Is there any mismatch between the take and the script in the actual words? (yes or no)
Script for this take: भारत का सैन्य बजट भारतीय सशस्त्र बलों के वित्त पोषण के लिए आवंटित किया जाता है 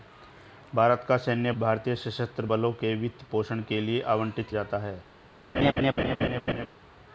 yes